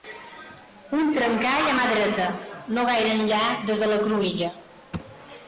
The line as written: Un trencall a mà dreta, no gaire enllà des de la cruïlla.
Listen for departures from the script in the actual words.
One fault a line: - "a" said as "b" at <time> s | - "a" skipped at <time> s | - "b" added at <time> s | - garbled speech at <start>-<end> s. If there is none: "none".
none